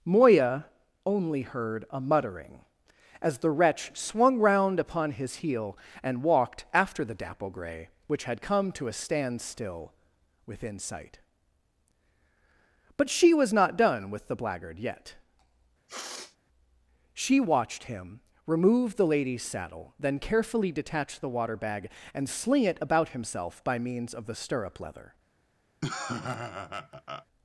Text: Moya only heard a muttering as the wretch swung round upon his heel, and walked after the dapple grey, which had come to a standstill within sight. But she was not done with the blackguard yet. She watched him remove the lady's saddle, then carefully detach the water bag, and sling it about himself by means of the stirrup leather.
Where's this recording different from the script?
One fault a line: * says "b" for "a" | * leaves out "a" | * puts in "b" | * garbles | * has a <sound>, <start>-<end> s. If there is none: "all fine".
* has a sniff, 15.9-16.4 s
* has a laugh, 25.8-27.3 s